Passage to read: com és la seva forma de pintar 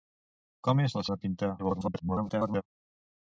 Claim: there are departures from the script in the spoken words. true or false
true